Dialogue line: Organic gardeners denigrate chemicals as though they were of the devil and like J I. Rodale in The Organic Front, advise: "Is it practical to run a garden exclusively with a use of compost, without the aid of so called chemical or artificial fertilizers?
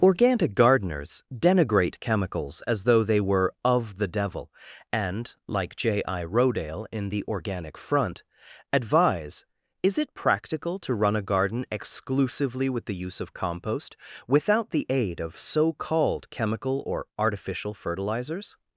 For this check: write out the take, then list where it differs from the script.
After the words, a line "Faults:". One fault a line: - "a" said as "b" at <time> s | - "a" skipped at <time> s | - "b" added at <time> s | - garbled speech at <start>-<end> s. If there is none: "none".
Organic gardeners denigrate chemicals as though they were of the devil and like J I. Rodale in The Organic Front, advise: "Is it practical to run a garden exclusively with the use of compost, without the aid of so called chemical or artificial fertilizers?
Faults:
- "a" said as "the" at 12.9 s